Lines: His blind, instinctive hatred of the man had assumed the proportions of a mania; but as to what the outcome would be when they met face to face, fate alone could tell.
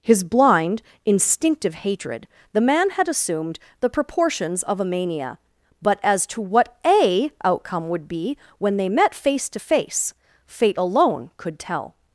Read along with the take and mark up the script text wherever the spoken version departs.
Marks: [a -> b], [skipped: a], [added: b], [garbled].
His blind, instinctive hatred [skipped: of] the man had assumed the proportions of a mania; but as to what [the -> a] outcome would be when they met face to face, fate alone could tell.